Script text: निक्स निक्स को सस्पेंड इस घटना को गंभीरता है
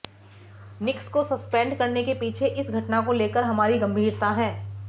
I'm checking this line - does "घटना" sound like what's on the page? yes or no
yes